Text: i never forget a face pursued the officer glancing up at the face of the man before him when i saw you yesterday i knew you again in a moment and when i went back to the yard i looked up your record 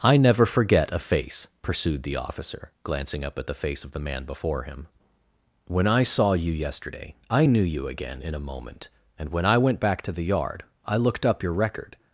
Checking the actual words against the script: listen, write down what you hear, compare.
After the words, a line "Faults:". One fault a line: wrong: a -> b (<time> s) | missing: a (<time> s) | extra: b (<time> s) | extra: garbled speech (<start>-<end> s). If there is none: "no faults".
i never forget a face pursued the officer glancing up at the face of the man before him when i saw you yesterday i knew you again in a moment and when i went back to the yard i looked up your record
Faults:
no faults